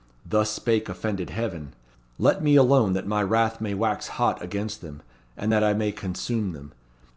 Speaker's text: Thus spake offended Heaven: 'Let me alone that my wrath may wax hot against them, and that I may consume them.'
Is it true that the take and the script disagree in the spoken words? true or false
false